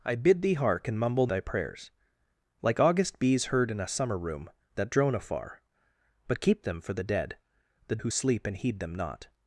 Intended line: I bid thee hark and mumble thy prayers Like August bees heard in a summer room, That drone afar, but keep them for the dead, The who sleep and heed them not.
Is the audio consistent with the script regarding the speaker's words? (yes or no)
yes